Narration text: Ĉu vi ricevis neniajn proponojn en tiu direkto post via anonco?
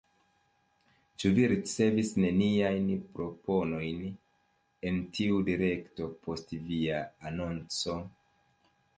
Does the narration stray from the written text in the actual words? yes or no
no